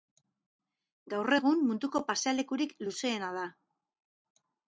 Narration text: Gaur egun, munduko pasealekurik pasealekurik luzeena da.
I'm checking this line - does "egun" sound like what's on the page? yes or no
yes